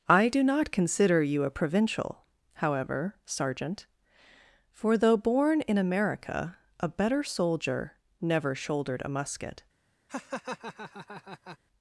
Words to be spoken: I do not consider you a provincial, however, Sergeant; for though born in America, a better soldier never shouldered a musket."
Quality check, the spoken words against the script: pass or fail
pass